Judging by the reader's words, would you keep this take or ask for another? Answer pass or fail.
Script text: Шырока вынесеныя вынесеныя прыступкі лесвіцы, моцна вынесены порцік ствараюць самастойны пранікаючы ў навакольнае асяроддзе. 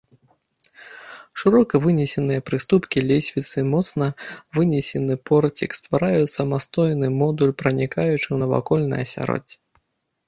fail